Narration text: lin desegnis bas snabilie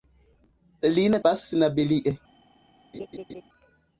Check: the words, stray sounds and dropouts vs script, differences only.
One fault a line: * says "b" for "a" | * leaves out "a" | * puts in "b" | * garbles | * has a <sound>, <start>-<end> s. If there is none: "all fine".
* leaves out "desegnis"
* has a laugh, 2.9-3.4 s